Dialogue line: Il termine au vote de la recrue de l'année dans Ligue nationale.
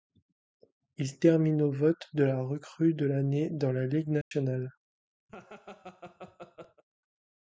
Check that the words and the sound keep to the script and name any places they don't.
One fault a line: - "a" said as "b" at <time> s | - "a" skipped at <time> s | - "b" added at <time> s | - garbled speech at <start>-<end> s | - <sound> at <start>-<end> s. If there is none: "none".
- "la" added at 3.7 s
- dropout at 4.2-4.3 s
- laugh at 5.3-6.8 s